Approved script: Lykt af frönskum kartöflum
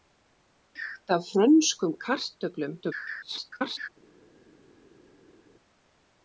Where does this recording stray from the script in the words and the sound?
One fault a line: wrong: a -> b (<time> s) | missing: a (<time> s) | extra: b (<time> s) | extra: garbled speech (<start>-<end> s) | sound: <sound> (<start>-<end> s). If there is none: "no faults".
extra: garbled speech (2.8-3.9 s)